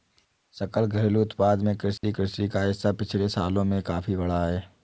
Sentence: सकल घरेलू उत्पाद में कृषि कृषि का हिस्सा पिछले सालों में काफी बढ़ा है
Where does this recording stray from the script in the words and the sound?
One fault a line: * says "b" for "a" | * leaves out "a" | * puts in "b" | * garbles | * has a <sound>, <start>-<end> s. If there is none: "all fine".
* has a dropout, 2.0-2.0 s